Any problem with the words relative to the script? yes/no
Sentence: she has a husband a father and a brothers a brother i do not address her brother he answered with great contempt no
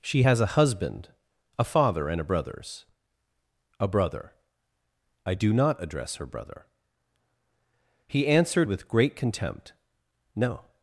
no